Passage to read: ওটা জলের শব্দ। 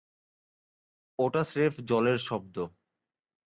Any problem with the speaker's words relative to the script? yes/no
yes